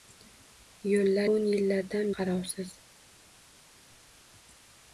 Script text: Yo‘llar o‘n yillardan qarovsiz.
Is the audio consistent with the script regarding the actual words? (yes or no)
yes